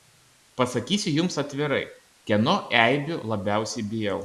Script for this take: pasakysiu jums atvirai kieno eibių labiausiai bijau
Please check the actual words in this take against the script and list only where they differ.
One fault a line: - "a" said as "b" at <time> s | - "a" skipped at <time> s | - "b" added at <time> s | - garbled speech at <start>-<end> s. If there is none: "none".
none